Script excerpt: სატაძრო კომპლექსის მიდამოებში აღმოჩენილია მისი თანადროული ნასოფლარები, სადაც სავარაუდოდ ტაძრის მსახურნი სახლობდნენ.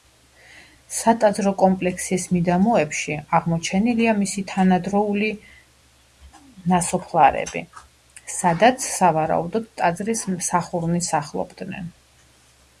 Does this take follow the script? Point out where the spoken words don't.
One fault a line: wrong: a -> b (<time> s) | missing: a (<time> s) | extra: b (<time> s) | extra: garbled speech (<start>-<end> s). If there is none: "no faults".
no faults